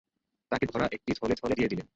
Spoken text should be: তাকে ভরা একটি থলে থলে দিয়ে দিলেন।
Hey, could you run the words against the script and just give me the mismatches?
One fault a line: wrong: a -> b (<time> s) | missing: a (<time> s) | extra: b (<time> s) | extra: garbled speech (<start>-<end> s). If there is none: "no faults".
no faults